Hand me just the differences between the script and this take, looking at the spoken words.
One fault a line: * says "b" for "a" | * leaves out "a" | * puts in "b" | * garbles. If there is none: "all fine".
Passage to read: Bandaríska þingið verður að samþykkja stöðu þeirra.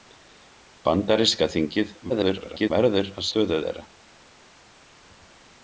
* garbles
* leaves out "samþykkja"